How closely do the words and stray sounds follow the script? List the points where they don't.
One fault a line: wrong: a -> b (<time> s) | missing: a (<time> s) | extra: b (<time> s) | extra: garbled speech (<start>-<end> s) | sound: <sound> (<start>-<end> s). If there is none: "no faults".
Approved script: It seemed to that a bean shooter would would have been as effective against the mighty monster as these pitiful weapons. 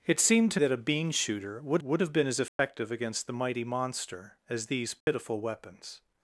sound: dropout (2.5-2.6 s)
sound: dropout (5.0-5.1 s)